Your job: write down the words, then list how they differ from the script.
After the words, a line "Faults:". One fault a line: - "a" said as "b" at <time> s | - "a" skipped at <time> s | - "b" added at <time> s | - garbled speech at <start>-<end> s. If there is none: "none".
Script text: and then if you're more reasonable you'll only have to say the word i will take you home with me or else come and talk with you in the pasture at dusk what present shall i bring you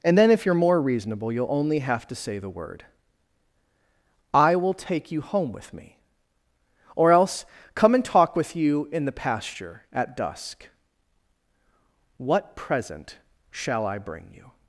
and then if you're more reasonable you'll only have to say the word i will take you home with me or else come and talk with you in the pasture at dusk what present shall i bring you
Faults:
none